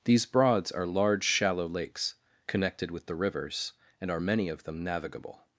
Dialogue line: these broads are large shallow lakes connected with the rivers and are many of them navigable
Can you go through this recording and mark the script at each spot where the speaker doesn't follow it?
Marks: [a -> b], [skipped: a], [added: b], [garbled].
these broads are large shallow lakes connected with the rivers and are many of them navigable